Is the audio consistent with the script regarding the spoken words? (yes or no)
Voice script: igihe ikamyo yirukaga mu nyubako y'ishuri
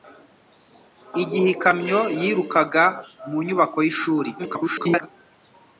no